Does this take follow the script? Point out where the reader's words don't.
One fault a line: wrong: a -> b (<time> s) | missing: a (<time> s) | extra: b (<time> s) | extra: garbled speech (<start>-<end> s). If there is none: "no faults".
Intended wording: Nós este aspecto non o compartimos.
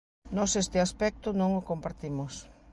no faults